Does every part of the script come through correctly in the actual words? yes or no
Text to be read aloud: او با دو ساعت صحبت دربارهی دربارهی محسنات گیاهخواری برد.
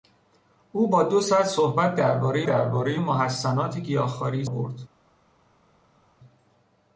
yes